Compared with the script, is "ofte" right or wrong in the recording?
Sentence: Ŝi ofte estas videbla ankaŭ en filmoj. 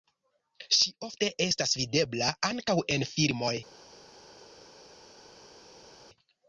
right